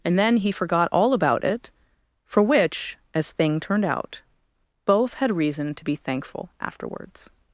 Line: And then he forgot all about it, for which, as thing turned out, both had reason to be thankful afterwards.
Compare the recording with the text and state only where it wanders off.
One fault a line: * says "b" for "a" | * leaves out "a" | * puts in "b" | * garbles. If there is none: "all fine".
all fine